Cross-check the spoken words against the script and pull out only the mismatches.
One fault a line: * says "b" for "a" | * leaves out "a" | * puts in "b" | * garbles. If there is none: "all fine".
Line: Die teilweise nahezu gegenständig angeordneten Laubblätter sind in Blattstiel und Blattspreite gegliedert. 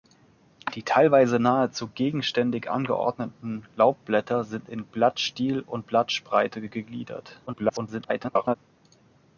* garbles